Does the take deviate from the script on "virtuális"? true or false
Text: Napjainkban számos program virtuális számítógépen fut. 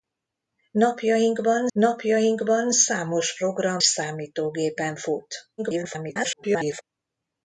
true